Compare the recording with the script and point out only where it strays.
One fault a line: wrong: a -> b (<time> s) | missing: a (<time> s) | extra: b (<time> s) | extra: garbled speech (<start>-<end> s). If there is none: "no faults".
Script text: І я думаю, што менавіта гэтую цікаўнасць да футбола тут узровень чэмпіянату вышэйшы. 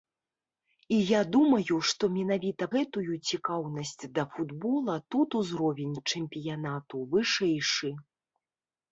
no faults